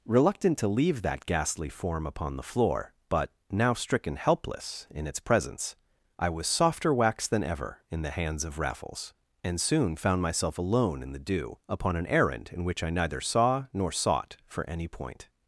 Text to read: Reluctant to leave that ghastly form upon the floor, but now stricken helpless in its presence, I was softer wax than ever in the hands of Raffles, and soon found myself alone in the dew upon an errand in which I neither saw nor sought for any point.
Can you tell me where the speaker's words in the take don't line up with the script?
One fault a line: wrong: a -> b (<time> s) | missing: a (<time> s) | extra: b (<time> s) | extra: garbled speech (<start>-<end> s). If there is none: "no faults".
no faults